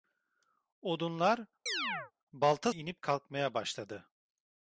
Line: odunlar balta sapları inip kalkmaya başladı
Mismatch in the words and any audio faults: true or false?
true